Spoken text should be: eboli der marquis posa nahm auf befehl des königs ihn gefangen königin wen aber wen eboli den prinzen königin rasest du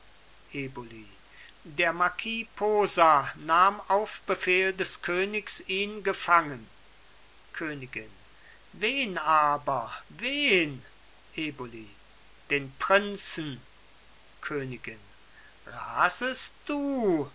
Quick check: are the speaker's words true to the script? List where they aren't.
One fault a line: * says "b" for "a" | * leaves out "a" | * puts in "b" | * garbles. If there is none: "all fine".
all fine